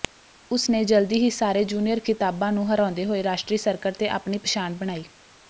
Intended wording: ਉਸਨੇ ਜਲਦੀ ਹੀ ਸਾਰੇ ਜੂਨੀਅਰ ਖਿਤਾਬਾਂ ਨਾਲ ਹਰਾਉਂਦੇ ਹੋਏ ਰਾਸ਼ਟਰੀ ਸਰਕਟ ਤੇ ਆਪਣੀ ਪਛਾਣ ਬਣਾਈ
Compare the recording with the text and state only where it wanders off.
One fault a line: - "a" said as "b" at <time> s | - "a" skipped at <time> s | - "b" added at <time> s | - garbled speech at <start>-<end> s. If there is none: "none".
- "ਨਾਲ" said as "ਨੂੰ" at 2.5 s